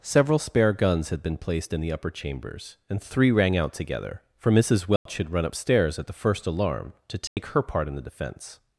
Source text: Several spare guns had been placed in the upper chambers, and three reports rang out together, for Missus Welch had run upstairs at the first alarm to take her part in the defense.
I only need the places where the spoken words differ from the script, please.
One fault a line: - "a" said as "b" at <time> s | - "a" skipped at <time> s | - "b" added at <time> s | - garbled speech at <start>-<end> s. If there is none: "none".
- "reports" skipped at 3.3 s